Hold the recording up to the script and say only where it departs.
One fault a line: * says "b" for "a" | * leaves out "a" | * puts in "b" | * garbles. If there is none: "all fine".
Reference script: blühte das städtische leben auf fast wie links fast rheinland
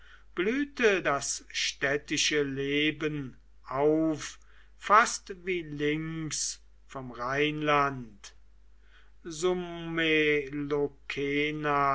* says "vom" for "fast"